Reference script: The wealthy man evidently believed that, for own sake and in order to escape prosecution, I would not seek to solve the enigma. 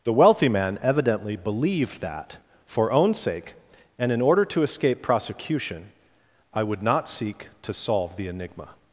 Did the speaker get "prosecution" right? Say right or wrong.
right